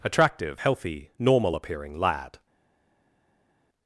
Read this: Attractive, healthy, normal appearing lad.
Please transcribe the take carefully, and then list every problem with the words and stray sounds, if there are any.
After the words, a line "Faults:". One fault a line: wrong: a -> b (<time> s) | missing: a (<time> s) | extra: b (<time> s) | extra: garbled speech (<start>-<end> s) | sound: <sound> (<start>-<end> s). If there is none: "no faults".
Attractive, healthy, normal appearing lad.
Faults:
no faults